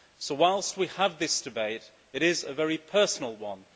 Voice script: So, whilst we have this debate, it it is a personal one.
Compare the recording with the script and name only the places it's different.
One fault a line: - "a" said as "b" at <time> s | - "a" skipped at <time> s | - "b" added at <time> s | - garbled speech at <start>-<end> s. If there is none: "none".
- "it" skipped at 2.2 s
- "very" added at 2.5 s